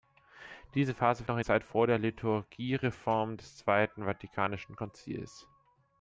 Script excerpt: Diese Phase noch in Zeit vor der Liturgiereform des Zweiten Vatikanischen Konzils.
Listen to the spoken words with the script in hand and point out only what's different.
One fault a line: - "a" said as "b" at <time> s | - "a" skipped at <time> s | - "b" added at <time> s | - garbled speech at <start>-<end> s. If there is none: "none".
none